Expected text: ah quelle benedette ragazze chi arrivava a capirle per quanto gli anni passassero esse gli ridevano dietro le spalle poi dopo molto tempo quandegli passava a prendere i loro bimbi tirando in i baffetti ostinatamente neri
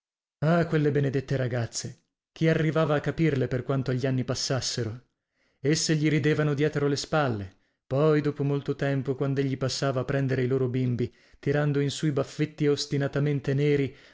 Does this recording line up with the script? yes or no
no